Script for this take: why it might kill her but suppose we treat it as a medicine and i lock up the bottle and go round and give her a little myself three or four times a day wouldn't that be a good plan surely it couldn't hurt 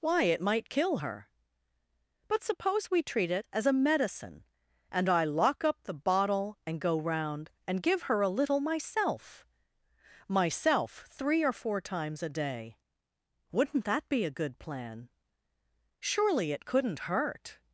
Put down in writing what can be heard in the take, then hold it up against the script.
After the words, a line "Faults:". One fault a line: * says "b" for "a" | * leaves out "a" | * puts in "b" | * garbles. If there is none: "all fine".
why it might kill her but suppose we treat it as a medicine and i lock up the bottle and go round and give her a little myself myself three or four times a day wouldn't that be a good plan surely it couldn't hurt
Faults:
* puts in "myself"